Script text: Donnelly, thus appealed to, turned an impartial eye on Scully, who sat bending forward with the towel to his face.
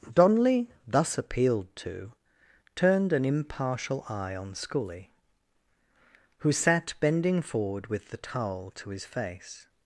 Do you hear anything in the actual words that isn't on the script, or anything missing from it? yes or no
no